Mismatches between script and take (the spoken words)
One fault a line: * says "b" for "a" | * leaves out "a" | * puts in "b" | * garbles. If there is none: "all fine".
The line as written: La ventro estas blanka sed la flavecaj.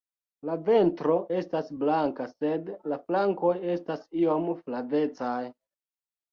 * puts in "flankoj estas iom"